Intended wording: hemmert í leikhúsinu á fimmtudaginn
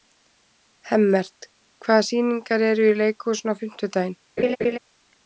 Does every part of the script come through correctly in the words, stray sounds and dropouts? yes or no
no